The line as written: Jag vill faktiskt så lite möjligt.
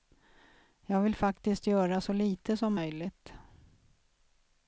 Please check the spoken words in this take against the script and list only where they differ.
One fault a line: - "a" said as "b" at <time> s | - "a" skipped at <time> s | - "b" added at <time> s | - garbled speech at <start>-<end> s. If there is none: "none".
- "göra" added at 1.7 s
- "som" added at 2.6 s